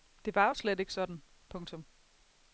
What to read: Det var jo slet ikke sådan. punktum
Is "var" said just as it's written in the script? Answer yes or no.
yes